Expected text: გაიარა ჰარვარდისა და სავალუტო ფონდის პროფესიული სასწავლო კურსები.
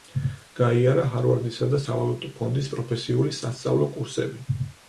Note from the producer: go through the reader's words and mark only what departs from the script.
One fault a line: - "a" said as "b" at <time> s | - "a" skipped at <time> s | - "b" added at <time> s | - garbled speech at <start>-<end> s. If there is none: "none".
none